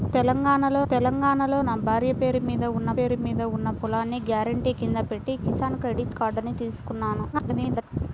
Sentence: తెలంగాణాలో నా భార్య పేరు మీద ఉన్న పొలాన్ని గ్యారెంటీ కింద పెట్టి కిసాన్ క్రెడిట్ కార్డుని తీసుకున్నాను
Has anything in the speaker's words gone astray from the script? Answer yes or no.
yes